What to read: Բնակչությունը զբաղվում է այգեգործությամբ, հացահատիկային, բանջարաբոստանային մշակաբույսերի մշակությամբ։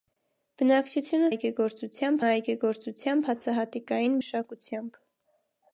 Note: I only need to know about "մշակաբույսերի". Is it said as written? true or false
false